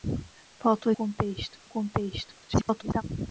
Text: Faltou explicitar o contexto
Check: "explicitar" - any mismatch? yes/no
yes